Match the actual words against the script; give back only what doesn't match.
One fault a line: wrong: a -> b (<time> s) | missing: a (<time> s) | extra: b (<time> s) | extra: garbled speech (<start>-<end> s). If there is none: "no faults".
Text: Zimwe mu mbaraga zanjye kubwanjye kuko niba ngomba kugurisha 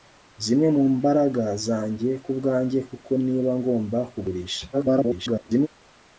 extra: garbled speech (4.7-5.7 s)